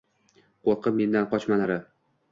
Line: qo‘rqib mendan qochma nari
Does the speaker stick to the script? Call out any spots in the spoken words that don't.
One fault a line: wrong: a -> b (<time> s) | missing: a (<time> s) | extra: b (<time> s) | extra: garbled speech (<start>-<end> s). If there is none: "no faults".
no faults